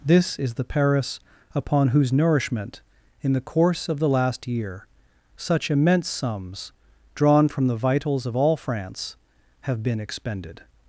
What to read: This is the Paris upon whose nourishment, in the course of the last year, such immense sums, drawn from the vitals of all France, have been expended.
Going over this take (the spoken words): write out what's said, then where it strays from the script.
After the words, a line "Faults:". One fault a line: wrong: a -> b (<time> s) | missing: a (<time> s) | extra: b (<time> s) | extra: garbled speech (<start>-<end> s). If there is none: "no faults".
This is the Paris upon whose nourishment, in the course of the last year, such immense sums, drawn from the vitals of all France, have been expended.
Faults:
no faults